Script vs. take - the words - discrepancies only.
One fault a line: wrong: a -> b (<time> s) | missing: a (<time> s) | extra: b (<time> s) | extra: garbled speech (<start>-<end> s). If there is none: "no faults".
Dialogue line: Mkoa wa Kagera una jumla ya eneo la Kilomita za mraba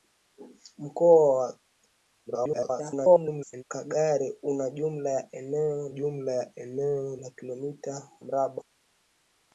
extra: garbled speech (2.3-3.6 s)
extra: jumla ya eneo (5.9 s)
missing: za (8.1 s)